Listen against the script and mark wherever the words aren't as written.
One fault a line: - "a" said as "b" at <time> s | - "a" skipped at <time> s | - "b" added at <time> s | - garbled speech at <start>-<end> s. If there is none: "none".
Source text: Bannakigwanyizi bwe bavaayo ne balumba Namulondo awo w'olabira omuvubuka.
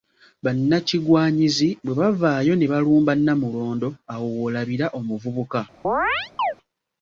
none